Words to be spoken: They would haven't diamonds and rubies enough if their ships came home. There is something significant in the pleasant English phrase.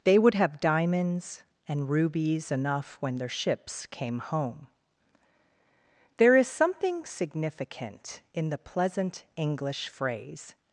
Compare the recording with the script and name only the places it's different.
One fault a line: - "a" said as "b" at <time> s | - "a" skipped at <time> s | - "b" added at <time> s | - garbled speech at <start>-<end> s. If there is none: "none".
- "haven't" said as "have" at 0.3 s
- "if" said as "when" at 3.0 s